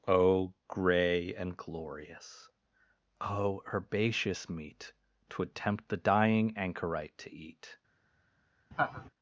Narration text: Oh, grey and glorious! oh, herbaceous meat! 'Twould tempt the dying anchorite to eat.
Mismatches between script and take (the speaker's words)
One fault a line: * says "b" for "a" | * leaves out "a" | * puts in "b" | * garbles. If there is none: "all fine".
all fine